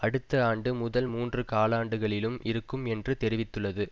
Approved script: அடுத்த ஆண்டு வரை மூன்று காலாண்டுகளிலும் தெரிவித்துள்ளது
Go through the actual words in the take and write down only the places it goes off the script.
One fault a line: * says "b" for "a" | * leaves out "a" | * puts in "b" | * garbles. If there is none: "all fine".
* says "முதல்" for "வரை"
* puts in "இருக்கும் என்று"